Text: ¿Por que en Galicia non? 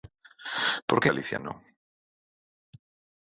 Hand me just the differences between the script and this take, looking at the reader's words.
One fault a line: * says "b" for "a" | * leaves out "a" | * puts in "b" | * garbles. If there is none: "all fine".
* leaves out "en"